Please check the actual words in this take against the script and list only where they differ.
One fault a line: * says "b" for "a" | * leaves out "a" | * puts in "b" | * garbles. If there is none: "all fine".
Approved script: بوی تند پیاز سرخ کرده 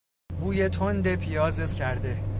* leaves out "سرخ"